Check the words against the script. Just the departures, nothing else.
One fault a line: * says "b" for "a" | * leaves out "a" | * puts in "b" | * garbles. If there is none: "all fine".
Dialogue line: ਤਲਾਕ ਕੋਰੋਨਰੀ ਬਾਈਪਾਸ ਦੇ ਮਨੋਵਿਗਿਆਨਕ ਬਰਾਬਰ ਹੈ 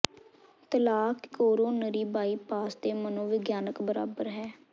all fine